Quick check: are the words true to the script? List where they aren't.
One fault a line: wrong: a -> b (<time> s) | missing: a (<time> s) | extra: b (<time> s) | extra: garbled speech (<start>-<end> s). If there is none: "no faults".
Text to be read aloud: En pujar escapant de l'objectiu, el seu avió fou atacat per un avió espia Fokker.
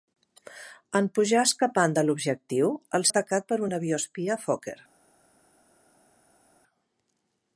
missing: seu avió fou (3.0 s)